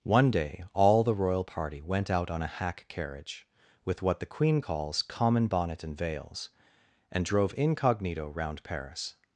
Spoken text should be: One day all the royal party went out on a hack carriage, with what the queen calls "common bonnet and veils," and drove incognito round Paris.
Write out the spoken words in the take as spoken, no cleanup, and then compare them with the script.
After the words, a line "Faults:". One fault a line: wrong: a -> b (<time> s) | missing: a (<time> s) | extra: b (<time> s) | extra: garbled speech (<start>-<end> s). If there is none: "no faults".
One day all the royal party went out on a hack carriage, with what the queen calls "common bonnet and veils," and drove incognito round Paris.
Faults:
no faults